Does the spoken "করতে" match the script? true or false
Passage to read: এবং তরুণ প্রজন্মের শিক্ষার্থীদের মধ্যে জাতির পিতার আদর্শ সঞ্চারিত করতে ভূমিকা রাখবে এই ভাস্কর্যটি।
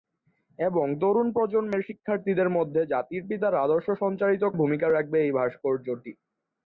false